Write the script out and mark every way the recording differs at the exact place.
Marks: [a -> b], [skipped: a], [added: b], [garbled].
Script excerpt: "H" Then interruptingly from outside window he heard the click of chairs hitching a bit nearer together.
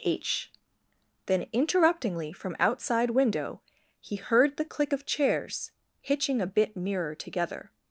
"H" Then interruptingly from outside window he heard the click of chairs hitching a bit nearer together.